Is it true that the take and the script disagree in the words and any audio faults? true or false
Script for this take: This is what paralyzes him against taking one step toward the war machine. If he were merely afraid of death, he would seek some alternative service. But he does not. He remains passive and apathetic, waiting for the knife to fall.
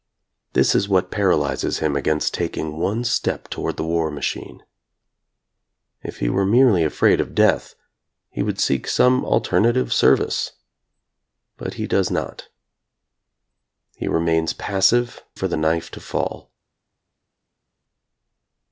true